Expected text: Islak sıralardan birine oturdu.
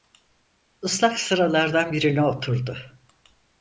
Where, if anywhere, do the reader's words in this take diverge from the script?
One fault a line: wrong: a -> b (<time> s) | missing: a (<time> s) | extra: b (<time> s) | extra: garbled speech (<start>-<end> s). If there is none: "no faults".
no faults